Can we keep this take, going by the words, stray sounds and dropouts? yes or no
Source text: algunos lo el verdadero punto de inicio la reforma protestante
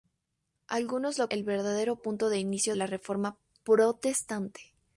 yes